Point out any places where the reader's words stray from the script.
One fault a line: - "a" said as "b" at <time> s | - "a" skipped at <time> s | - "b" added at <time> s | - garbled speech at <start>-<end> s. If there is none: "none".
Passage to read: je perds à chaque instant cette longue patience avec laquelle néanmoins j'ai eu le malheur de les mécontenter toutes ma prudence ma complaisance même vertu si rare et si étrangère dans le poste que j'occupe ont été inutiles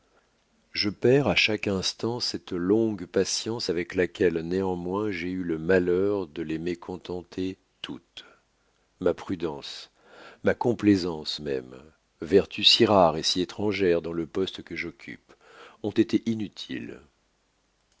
none